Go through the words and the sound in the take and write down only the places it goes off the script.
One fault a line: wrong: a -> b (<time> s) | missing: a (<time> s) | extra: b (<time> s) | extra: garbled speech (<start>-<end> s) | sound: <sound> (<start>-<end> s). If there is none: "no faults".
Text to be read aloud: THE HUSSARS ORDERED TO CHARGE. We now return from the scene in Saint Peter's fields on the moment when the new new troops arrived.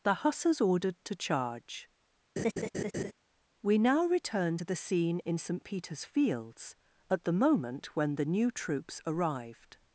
sound: laugh (2.4-3.1 s)
wrong: from -> to (4.5 s)
wrong: on -> at (7.1 s)
missing: new (8.5 s)